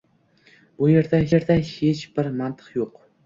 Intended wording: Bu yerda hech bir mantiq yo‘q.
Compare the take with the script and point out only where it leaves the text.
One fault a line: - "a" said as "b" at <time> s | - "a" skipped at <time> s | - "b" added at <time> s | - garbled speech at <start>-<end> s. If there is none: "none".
- "yerda" added at 1.3 s